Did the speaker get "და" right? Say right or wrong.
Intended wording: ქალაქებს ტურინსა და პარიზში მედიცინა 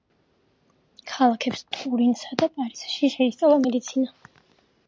right